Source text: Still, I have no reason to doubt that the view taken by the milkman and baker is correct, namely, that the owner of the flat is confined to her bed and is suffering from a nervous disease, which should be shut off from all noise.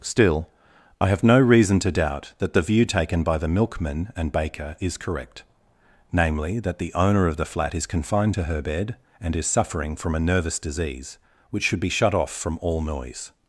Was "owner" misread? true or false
false